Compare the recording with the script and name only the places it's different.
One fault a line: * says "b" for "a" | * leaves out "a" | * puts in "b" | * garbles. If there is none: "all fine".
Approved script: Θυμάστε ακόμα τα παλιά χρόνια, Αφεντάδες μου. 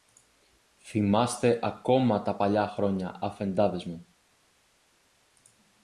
all fine